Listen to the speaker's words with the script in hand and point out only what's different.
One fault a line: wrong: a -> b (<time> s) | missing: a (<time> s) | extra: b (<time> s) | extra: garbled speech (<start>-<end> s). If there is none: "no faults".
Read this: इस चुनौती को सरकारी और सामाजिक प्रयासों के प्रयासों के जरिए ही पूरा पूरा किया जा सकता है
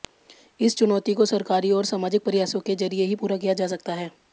missing: प्रयासों के (2.7 s)
missing: पूरा (3.4 s)